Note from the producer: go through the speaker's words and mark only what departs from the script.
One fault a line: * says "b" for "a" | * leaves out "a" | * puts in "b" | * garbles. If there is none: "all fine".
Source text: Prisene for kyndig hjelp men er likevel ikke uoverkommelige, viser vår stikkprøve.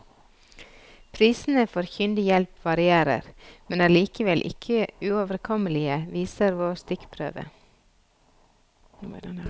* puts in "varierer"